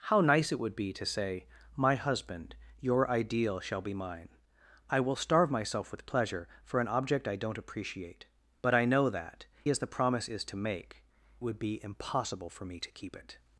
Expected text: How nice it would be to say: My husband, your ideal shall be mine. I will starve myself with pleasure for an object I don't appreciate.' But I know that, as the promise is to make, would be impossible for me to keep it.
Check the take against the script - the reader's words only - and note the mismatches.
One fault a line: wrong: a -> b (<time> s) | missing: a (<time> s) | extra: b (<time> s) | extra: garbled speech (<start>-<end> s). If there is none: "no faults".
no faults